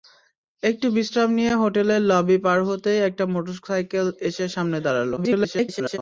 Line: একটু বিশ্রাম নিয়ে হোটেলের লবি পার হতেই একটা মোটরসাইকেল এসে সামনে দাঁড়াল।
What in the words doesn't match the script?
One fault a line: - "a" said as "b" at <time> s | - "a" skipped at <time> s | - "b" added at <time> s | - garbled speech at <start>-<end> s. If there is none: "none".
- garbled speech at 5.2-6.0 s